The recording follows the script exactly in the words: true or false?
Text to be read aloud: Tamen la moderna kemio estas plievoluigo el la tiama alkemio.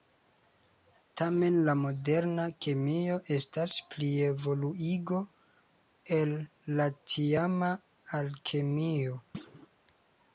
true